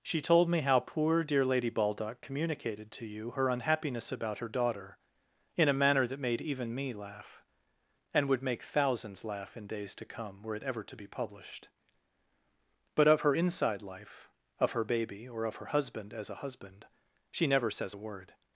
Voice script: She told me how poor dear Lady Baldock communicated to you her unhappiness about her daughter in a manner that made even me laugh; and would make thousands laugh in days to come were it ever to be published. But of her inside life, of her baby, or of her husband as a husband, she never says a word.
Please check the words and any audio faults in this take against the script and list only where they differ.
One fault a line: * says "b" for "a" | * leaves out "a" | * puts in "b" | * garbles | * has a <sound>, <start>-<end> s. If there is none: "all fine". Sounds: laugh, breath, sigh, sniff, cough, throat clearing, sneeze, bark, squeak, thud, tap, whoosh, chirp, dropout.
all fine